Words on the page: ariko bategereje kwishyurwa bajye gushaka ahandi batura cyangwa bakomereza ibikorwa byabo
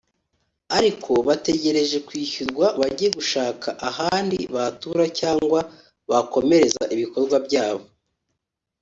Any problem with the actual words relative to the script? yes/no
no